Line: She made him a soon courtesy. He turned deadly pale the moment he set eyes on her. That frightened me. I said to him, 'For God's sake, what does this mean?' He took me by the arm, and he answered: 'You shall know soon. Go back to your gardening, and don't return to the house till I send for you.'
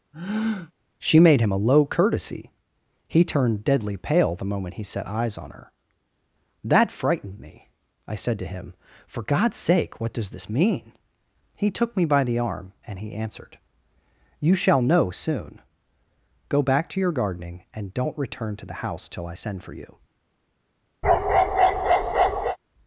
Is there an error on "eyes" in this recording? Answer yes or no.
no